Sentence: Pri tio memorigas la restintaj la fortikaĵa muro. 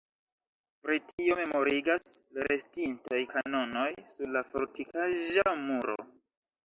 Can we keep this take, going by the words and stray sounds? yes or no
no